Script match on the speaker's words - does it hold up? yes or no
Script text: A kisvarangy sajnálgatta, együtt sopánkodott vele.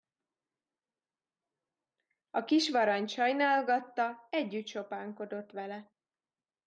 yes